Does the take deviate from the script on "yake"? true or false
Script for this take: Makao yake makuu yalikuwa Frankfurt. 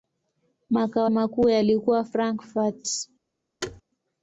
true